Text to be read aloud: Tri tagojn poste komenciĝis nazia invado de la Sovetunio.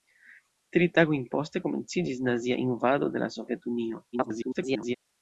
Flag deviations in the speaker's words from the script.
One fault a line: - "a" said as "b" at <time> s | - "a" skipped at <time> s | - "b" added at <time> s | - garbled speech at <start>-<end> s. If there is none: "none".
- garbled speech at 4.1-5.0 s